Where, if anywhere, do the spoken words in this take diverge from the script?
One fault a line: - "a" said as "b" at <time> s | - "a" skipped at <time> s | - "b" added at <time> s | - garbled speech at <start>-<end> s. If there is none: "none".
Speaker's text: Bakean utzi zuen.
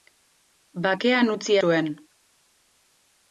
none